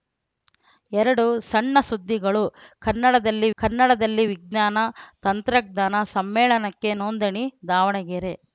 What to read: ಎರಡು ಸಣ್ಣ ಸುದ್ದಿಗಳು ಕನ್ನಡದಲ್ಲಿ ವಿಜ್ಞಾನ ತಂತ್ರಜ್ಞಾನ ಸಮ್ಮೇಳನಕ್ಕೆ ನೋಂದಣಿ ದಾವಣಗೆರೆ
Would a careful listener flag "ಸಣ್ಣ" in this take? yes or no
no